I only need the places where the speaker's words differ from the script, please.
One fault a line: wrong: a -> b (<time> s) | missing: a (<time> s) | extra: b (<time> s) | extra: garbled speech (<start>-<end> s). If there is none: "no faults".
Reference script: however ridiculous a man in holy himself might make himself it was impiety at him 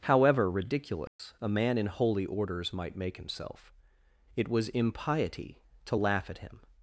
wrong: himself -> orders (2.2 s)
extra: to laugh (5.8 s)